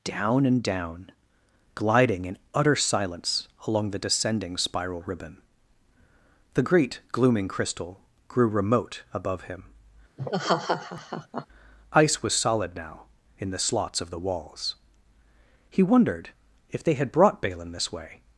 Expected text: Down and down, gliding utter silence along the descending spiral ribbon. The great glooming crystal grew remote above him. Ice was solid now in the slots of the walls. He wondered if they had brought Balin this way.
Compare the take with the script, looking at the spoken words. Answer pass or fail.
fail